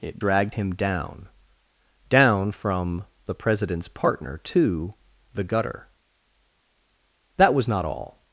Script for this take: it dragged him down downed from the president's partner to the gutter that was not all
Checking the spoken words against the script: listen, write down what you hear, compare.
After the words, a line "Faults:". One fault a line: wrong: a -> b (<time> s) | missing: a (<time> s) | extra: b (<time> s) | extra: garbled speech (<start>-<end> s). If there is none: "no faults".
it dragged him down down from the president's partner to the gutter that was not all
Faults:
wrong: downed -> down (2.1 s)